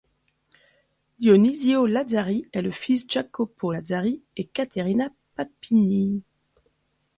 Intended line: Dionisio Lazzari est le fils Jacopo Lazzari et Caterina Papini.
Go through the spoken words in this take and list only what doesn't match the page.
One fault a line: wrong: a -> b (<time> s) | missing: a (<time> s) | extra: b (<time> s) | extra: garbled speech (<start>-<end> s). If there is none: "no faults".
no faults